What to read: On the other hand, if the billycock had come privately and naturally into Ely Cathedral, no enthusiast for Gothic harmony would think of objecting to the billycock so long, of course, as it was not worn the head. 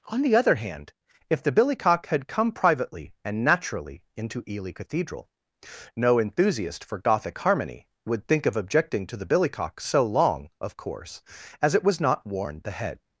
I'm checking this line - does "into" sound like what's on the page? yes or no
yes